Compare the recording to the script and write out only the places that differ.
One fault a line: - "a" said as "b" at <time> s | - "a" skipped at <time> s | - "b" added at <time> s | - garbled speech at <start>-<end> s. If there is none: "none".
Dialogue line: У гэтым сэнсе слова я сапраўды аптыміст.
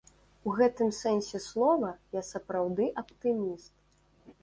none